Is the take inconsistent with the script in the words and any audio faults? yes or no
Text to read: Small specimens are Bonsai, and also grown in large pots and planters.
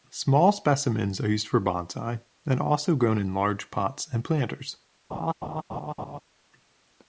yes